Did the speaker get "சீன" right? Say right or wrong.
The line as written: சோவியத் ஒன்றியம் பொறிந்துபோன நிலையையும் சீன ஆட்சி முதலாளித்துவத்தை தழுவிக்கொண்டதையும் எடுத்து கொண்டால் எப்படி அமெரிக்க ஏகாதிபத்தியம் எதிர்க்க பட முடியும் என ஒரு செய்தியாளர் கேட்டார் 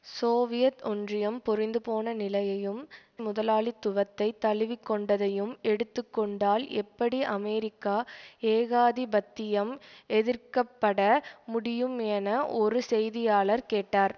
wrong